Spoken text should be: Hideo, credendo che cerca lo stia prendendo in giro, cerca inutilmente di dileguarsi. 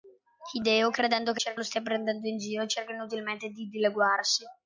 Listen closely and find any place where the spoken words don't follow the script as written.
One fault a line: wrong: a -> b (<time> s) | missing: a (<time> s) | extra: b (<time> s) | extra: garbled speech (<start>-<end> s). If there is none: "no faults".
no faults